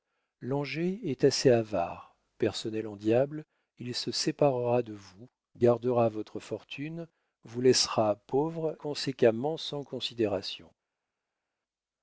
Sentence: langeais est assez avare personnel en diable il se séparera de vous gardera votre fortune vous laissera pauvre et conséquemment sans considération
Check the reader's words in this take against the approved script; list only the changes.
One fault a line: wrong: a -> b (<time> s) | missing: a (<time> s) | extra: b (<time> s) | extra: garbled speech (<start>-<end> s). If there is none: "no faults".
missing: et (8.8 s)